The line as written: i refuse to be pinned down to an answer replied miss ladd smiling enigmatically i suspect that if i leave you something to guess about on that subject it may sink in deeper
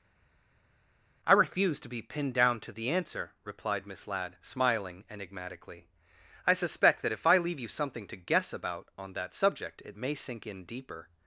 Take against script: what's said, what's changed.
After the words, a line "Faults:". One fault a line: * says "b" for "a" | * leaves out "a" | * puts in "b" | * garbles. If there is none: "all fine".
i refuse to be pinned down to the answer replied miss ladd smiling enigmatically i suspect that if i leave you something to guess about on that subject it may sink in deeper
Faults:
* says "the" for "an"